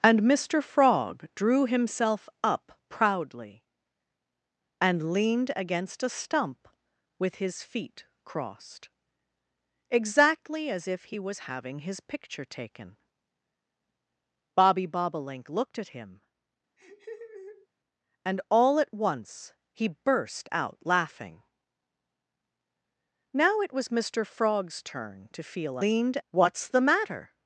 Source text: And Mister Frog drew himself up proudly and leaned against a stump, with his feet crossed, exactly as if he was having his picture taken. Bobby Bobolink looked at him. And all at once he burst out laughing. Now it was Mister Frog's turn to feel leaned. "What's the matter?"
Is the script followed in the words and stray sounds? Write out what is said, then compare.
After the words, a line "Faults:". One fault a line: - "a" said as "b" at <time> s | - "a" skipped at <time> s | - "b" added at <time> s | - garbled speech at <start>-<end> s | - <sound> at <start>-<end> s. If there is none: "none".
And Mister Frog drew himself up proudly and leaned against a stump, with his feet crossed, exactly as if he was having his picture taken. Bobby Bobolink looked at him. And all at once he burst out laughing. Now it was Mister Frog's turn to feel leaned. "What's the matter?"
Faults:
- laugh at 16.8-17.7 s